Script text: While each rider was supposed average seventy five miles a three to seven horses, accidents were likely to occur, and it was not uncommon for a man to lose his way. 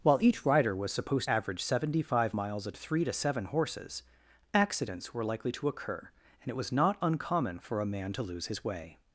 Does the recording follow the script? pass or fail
pass